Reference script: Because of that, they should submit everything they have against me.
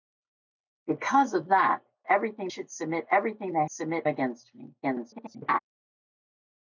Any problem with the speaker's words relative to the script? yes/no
yes